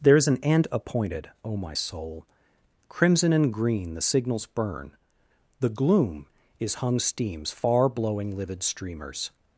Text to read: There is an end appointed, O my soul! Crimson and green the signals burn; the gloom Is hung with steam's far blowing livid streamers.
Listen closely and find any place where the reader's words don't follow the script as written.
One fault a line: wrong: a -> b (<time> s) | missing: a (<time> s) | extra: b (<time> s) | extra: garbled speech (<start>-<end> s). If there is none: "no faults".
missing: with (7.0 s)